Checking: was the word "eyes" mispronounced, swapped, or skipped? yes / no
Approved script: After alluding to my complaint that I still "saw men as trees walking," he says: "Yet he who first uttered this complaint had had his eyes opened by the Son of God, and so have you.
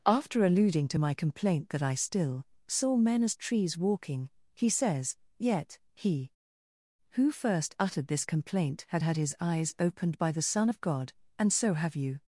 no